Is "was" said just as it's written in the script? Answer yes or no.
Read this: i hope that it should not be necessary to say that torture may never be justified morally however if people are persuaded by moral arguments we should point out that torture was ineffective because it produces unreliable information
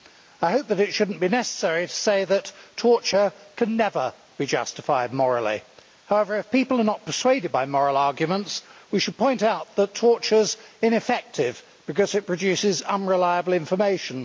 no